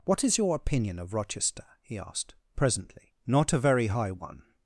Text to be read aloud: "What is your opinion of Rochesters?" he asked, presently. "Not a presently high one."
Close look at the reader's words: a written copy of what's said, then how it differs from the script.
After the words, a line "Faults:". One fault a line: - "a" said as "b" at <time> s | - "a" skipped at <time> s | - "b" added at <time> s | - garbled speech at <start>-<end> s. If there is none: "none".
"What is your opinion of Rochester?" he asked, presently. "Not a very high one."
Faults:
- "Rochesters" said as "Rochester" at 1.1 s
- "presently" said as "very" at 3.6 s